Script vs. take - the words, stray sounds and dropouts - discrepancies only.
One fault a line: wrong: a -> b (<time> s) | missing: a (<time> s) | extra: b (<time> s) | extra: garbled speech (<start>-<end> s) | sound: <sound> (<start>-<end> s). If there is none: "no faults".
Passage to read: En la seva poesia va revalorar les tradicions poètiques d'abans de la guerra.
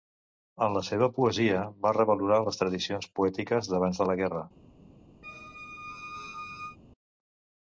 sound: squeak (5.2-6.8 s)